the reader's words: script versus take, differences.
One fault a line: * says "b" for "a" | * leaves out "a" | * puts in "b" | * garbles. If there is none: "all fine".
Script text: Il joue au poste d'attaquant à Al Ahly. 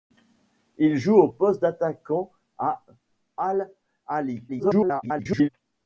* garbles